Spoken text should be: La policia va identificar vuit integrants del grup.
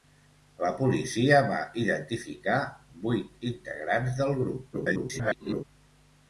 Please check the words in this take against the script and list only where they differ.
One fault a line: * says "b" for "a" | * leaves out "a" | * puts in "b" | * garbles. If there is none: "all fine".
* garbles